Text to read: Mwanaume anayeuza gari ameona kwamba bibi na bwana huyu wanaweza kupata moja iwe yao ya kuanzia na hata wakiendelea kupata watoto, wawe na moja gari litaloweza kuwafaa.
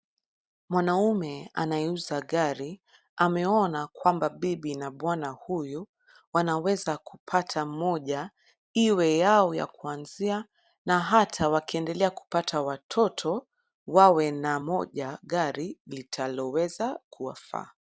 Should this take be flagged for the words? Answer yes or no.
no